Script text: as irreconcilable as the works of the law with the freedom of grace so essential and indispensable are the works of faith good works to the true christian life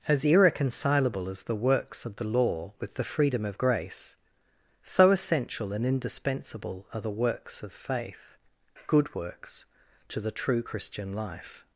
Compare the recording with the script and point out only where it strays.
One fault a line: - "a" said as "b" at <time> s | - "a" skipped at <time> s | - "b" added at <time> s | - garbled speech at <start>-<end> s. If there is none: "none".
none